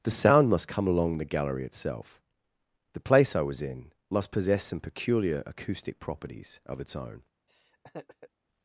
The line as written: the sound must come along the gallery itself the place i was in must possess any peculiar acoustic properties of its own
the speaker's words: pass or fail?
fail